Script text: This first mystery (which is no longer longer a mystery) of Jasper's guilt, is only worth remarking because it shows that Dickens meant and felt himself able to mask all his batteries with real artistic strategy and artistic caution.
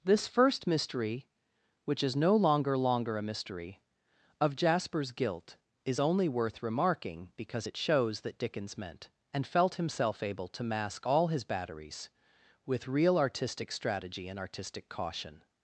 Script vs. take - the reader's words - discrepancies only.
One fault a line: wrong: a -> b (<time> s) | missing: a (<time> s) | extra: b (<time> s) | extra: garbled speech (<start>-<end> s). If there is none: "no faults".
no faults